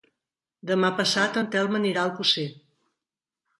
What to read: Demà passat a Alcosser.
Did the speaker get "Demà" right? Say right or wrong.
right